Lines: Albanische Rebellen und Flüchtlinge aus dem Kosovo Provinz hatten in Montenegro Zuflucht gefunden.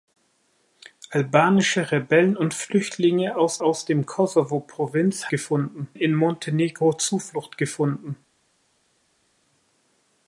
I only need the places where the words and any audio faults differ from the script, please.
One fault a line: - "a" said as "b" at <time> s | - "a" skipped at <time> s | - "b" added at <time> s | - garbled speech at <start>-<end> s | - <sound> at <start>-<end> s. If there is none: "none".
- "aus" added at 3.6 s
- "hatten" said as "gefunden" at 5.3 s